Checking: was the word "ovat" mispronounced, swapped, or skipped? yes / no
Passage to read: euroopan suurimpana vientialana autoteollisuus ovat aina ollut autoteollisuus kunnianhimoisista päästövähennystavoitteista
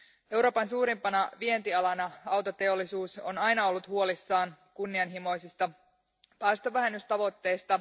yes